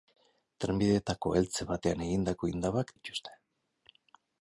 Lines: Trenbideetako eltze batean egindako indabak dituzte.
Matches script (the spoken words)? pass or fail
pass